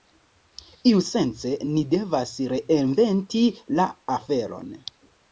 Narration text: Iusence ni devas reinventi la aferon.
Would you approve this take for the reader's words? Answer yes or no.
yes